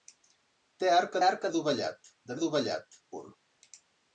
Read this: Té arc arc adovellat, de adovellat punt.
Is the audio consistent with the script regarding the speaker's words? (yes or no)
yes